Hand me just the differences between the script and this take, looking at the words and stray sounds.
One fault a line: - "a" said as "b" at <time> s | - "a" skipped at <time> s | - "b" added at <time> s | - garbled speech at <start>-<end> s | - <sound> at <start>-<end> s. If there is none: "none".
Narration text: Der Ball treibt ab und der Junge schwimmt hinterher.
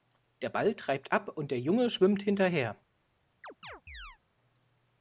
- chirp at 3.4-4.2 s